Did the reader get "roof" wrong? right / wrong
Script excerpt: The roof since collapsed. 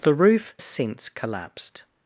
right